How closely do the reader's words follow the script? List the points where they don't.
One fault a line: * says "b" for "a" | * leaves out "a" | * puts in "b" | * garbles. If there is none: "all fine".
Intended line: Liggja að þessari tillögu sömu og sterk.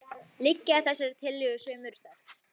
all fine